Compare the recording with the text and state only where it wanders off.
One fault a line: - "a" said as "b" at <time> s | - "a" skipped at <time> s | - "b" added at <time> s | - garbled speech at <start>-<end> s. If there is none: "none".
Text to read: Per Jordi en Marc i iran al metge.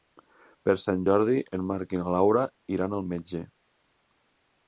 - "Sant" added at 0.8 s
- "na Laura" added at 2.0 s